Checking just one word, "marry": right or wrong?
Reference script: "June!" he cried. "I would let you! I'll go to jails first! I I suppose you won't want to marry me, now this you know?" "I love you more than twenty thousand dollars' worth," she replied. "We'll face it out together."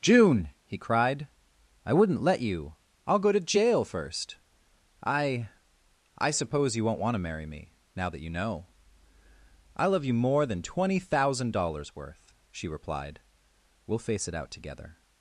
right